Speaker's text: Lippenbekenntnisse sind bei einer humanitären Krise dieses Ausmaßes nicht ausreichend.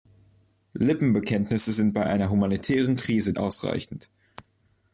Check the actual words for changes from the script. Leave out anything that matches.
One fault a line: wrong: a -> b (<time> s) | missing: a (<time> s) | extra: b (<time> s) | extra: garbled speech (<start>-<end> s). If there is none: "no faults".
missing: dieses Ausmaßes nicht (3.3 s)